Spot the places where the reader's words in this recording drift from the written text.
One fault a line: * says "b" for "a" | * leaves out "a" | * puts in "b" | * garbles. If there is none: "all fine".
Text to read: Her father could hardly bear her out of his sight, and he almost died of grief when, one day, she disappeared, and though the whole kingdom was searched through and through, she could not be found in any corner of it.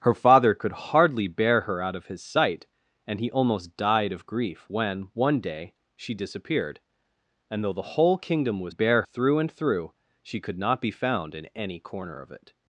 * says "bear" for "searched"